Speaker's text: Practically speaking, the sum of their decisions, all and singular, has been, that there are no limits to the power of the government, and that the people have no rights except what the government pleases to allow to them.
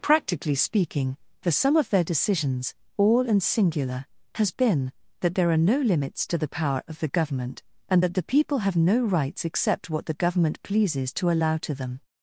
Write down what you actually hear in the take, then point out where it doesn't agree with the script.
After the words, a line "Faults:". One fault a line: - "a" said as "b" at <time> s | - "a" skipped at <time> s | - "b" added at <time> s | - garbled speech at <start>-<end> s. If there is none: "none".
Practically speaking, the sum of their decisions, all and singular, has been, that there are no limits to the power of the government, and that the people have no rights except what the government pleases to allow to them.
Faults:
none